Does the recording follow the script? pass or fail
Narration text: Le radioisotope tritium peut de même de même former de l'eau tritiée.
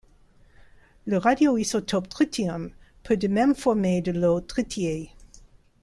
fail